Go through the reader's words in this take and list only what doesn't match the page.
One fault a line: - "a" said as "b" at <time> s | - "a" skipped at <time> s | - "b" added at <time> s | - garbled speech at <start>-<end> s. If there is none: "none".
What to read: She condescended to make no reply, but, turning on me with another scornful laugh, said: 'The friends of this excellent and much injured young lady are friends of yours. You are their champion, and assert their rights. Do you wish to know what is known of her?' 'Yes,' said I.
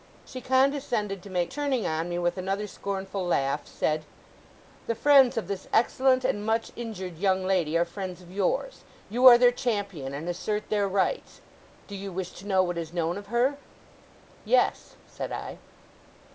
- "no reply but" skipped at 1.5 s